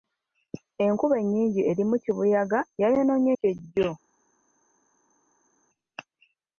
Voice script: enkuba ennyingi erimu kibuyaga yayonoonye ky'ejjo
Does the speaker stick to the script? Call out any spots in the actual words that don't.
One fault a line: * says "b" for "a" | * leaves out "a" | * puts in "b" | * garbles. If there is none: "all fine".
all fine